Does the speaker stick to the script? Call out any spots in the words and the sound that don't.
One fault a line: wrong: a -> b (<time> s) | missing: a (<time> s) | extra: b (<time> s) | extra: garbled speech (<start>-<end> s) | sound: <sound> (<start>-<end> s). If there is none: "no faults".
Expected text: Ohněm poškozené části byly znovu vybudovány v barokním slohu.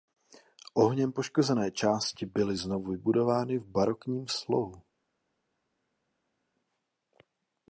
no faults